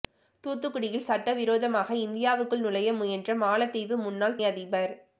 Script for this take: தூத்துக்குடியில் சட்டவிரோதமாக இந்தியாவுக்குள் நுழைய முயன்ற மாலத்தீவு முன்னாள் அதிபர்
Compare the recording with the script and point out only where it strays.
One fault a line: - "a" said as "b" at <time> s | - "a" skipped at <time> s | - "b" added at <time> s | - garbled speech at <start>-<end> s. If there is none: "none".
none